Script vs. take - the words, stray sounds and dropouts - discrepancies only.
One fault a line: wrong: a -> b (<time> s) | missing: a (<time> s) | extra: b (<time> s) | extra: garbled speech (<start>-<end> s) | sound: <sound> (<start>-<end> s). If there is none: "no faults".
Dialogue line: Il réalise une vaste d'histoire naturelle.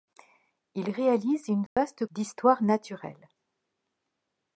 sound: dropout (1.7-1.8 s)